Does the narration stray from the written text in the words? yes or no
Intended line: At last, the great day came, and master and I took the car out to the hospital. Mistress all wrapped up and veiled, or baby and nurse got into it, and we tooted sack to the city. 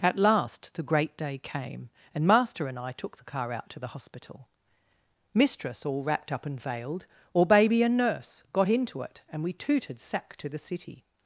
no